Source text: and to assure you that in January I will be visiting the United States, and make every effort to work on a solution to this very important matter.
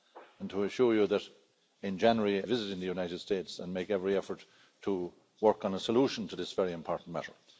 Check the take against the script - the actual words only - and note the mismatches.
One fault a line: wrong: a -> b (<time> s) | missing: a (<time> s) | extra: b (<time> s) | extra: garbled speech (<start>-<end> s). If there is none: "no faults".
missing: I will be (2.4 s)